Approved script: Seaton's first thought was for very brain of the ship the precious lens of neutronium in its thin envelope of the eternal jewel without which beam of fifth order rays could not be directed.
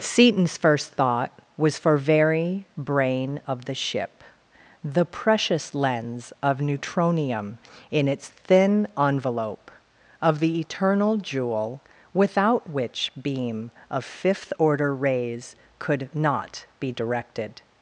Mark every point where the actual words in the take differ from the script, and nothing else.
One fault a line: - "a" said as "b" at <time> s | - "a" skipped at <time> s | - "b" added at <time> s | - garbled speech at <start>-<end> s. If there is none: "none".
none